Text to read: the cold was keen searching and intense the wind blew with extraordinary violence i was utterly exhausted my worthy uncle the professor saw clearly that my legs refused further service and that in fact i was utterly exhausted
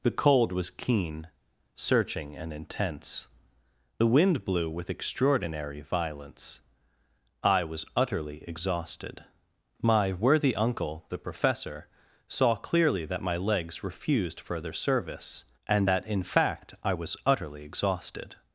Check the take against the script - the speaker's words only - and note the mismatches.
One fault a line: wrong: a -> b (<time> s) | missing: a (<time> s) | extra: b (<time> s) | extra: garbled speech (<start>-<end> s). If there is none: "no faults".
no faults